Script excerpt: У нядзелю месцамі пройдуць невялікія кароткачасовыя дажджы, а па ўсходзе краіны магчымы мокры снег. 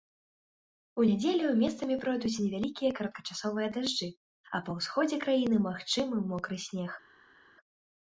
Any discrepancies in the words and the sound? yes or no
no